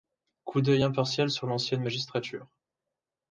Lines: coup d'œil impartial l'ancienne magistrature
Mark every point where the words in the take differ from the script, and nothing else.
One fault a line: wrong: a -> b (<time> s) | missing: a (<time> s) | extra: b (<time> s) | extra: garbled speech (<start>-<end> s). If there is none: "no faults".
extra: sur (1.3 s)